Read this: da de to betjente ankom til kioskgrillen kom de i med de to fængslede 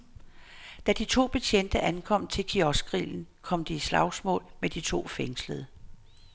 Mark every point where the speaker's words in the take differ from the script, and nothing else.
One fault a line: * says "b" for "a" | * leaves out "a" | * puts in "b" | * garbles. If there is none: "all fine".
* puts in "slagsmål"